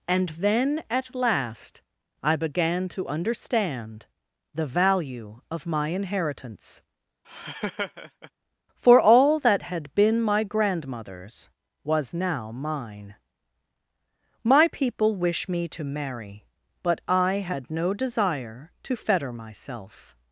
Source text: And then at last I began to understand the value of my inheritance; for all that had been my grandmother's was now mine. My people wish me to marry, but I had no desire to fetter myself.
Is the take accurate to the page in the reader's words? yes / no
yes